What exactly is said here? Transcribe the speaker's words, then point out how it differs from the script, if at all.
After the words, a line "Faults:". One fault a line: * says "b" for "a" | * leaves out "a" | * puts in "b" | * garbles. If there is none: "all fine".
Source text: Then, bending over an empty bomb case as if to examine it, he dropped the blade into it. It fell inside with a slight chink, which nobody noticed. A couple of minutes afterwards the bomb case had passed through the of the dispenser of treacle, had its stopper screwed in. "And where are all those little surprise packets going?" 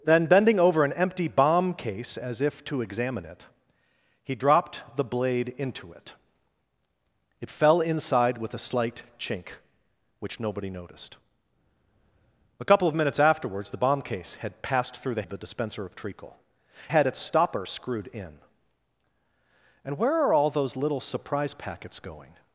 Then, bending over an empty bomb case as if to examine it, he dropped the blade into it. It fell inside with a slight chink, which nobody noticed. A couple of minutes afterwards the bomb case had passed through the of the dispenser of treacle, had its stopper screwed in. "And where are all those little surprise packets going?"
Faults:
all fine